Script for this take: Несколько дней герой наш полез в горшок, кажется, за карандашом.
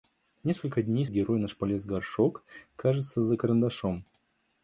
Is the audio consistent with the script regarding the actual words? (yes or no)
yes